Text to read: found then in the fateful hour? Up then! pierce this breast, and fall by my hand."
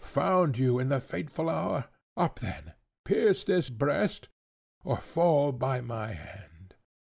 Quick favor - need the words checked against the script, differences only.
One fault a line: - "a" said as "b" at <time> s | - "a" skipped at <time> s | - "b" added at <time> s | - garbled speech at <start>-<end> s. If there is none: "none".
- "then" said as "you" at 0.6 s
- "and" said as "or" at 4.8 s